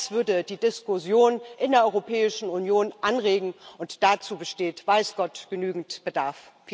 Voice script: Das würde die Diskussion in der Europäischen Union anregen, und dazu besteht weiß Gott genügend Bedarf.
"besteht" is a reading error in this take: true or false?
false